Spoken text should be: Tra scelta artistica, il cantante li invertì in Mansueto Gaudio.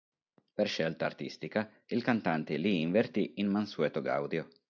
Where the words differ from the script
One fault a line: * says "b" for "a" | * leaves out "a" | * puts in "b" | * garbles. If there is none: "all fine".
* says "Per" for "Tra"